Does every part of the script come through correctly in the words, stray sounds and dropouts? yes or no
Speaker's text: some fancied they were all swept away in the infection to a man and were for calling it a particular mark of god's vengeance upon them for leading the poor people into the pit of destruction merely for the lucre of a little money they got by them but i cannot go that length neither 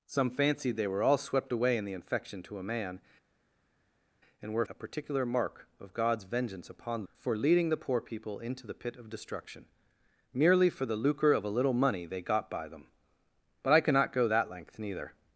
no